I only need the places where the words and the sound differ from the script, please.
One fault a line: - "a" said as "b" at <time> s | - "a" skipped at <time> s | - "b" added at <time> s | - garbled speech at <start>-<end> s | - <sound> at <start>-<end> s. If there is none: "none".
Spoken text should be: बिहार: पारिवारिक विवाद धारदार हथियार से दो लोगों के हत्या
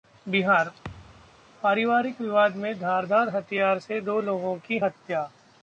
- thud at 0.8-1.5 s
- "में" added at 2.5 s
- "के" said as "की" at 4.7 s